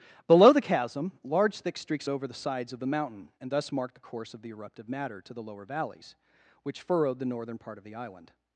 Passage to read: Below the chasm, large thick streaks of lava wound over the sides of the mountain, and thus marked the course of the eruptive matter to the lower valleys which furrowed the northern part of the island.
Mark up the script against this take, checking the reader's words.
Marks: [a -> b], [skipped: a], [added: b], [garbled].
Below the chasm, large thick streaks [skipped: of lava wound] over the sides of the mountain, and thus marked the course of the eruptive matter to the lower valleys which furrowed the northern part of the island.